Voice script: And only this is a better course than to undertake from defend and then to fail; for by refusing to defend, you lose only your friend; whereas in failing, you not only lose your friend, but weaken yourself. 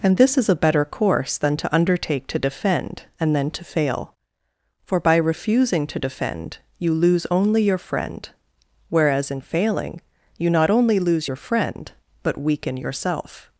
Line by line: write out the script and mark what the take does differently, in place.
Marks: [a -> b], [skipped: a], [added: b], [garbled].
And [skipped: only] this is a better course than to undertake [from -> to] defend and then to fail; for by refusing to defend, you lose only your friend; whereas in failing, you not only lose your friend, but weaken yourself.